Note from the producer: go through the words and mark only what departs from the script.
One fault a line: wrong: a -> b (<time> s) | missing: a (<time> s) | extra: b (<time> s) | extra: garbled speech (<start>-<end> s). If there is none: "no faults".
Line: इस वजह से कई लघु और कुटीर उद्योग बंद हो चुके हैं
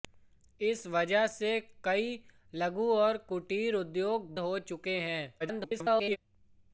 missing: बंद (4.3 s)
extra: garbled speech (5.4-6.2 s)